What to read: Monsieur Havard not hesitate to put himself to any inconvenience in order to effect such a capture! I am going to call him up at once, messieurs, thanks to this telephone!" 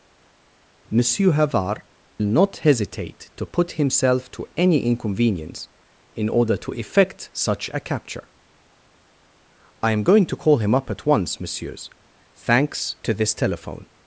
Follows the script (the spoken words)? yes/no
yes